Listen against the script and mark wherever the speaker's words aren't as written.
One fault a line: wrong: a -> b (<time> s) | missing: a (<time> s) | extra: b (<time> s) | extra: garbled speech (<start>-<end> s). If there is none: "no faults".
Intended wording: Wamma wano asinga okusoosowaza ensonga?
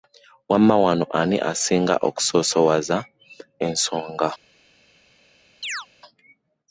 extra: ani (1.2 s)